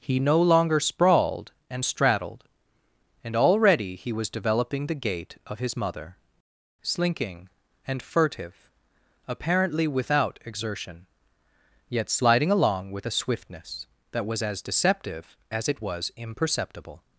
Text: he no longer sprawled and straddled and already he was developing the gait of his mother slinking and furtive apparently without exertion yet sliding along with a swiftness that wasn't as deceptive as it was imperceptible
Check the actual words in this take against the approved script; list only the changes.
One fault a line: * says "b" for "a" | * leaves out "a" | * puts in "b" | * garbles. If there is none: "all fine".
* says "was" for "wasn't"